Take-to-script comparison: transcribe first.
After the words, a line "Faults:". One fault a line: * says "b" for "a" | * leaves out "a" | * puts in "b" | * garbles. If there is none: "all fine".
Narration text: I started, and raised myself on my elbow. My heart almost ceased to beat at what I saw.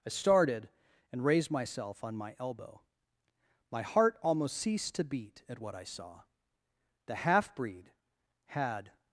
I started, and raised myself on my elbow. My heart almost ceased to beat at what I saw. The half breed had
Faults:
* puts in "The half breed had"